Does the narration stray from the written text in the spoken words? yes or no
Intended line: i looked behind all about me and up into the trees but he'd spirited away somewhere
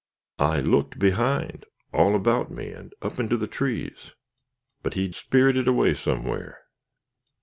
no